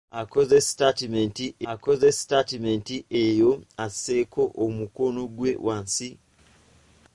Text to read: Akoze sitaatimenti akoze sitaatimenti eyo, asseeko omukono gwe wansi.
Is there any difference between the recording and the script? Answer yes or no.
no